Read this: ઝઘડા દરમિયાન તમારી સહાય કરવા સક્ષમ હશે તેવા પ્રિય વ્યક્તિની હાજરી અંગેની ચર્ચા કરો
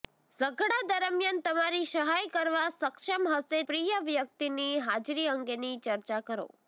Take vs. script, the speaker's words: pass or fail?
fail